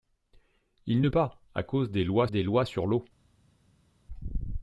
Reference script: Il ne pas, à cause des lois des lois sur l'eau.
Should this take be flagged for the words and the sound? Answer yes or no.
no